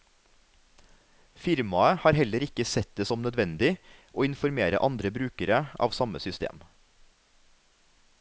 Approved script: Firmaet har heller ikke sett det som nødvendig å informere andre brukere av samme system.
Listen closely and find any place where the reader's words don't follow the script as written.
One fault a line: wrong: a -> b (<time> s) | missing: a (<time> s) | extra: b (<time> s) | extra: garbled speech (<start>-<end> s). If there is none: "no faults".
no faults